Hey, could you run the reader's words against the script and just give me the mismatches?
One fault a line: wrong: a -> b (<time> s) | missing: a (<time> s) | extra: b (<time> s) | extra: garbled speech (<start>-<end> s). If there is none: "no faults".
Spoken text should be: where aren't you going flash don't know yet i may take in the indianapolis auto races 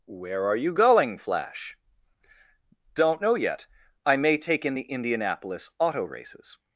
wrong: aren't -> are (0.5 s)